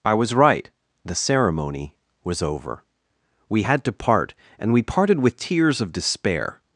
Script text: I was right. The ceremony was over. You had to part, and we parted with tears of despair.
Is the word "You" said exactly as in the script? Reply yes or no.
no